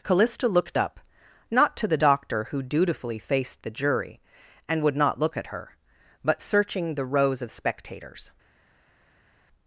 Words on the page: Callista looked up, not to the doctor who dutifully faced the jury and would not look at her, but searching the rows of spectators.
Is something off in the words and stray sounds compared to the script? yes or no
no